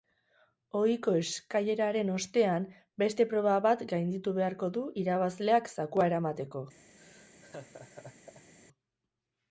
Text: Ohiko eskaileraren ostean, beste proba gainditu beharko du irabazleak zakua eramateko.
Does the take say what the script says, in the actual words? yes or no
no